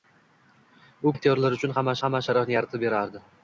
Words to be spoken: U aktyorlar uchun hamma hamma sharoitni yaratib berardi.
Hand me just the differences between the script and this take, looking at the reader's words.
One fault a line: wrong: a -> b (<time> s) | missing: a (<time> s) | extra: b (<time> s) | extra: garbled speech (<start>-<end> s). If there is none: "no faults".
no faults